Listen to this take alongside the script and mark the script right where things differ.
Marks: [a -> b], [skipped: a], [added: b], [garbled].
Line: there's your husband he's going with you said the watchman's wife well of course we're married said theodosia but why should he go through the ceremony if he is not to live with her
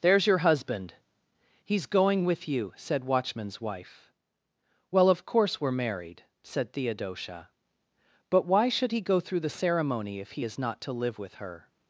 there's your husband he's going with you said [skipped: the] watchman's wife well of course we're married said theodosia but why should he go through the ceremony if he is not to live with her